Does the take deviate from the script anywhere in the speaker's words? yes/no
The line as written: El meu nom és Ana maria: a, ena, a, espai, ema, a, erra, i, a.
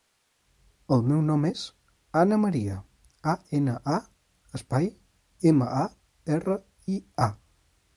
no